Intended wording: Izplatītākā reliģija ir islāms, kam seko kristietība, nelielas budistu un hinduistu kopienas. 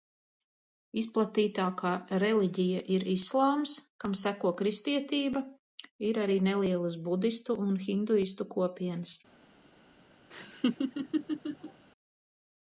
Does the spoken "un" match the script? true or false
true